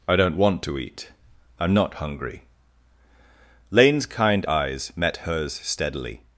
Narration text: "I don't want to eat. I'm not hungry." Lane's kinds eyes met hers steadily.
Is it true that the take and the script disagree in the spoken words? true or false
true